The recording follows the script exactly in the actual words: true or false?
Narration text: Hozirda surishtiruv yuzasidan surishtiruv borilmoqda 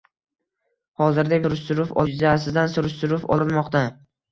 true